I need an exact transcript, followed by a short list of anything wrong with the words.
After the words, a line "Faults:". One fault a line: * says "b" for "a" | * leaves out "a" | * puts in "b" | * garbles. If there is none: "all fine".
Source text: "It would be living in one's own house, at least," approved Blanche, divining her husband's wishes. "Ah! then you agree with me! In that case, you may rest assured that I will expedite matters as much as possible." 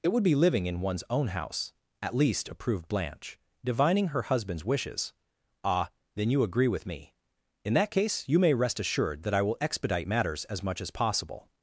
"It would be living in one's own house, at least," approved Blanche, divining her husband's wishes. "Ah! then you agree with me! In that case, you may rest assured that I will expedite matters as much as possible."
Faults:
all fine